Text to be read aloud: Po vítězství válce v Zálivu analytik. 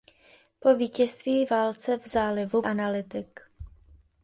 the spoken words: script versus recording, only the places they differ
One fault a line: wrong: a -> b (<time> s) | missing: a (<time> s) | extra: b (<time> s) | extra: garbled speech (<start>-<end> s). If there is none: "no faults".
no faults